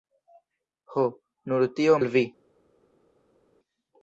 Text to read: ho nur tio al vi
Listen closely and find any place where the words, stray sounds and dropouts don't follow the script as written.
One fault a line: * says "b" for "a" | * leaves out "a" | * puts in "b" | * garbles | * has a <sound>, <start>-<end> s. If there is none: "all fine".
all fine